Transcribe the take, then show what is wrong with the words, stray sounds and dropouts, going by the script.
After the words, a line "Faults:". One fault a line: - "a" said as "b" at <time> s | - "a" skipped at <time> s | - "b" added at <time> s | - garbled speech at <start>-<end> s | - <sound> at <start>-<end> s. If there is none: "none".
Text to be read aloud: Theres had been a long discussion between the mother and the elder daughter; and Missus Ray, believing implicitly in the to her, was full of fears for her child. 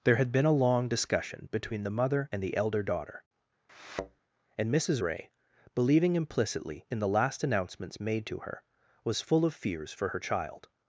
There had been a long discussion between the mother and the elder daughter; and Missus Ray, believing implicitly in the last announcements made to her, was full of fears for her child.
Faults:
- "Theres" said as "There" at 0.0 s
- thud at 3.7-4.2 s
- "last announcements made" added at 7.1 s